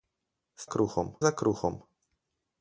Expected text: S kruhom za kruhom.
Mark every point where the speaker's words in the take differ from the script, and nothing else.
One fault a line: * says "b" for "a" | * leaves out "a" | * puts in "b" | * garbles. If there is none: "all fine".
all fine